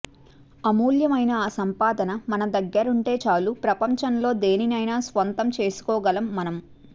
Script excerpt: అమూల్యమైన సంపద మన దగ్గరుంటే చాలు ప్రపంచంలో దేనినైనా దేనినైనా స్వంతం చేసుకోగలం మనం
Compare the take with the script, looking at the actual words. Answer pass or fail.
fail